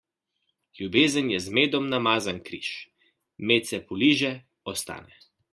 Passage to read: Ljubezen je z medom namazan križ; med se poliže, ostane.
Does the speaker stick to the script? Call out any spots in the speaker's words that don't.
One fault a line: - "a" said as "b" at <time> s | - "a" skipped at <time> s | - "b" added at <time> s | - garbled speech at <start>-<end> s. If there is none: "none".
none